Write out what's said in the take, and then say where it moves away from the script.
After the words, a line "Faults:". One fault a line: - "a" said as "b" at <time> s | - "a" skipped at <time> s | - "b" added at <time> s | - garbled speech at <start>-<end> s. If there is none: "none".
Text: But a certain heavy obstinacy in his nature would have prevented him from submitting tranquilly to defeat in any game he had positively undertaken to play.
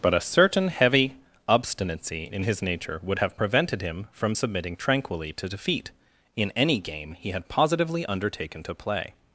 But a certain heavy obstinacy in his nature would have prevented him from submitting tranquilly to defeat in any game he had positively undertaken to play.
Faults:
none